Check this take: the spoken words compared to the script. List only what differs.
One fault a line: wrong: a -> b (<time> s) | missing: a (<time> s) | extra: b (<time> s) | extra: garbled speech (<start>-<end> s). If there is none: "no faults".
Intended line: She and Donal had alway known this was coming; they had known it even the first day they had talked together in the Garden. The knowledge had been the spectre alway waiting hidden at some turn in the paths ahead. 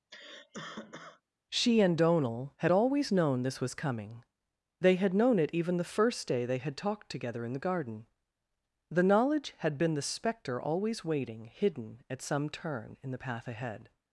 wrong: alway -> always (2.7 s)
wrong: alway -> always (10.6 s)
wrong: paths -> path (13.2 s)